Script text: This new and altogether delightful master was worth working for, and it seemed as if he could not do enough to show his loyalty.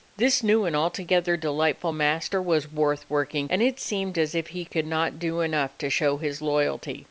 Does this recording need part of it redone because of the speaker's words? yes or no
yes